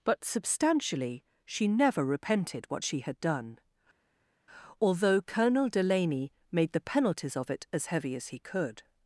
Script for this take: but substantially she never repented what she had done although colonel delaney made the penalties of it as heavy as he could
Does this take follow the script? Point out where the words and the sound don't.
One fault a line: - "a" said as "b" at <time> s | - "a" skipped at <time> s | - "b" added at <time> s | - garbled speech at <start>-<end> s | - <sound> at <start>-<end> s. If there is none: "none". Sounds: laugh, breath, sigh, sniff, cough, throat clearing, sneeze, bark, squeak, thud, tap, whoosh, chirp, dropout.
none